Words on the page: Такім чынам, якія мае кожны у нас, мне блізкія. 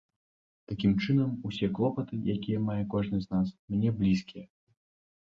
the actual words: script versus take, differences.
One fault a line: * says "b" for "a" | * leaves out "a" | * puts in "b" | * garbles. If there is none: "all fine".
* puts in "усе клопаты"
* says "з" for "у"